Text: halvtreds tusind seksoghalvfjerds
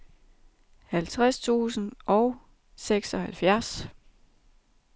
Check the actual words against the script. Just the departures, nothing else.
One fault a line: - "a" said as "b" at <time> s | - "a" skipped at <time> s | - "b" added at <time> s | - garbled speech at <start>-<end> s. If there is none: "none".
- "og" added at 2.1 s